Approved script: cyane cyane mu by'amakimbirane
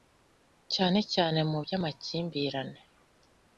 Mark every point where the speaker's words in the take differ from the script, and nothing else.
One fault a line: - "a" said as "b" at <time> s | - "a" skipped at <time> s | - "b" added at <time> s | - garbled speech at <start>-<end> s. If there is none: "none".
none